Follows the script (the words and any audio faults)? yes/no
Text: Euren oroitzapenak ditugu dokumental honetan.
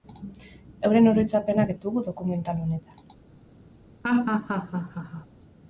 no